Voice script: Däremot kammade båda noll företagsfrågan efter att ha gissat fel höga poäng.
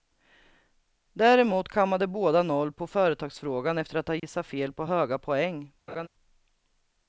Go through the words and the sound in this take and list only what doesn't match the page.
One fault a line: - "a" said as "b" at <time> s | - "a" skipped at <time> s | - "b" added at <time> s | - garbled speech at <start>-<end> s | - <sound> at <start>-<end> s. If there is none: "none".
- "på" added at 2.7 s
- dropout at 4.2-4.2 s
- "på" added at 4.7 s
- laugh at 5.9-6.1 s